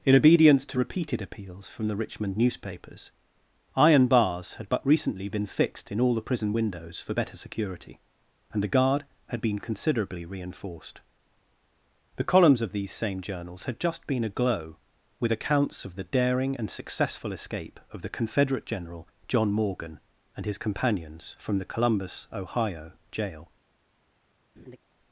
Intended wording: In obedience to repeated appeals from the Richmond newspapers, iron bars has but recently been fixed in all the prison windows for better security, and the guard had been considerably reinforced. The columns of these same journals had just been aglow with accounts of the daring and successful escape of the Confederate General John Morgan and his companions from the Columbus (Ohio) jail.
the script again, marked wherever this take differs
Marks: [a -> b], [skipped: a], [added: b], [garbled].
In obedience to repeated appeals from the Richmond newspapers, iron bars [has -> had] but recently been fixed in all the prison windows for better security, and the guard had been considerably reinforced. The columns of these same journals had just been aglow with accounts of the daring and successful escape of the Confederate General John Morgan and his companions from the Columbus (Ohio) jail.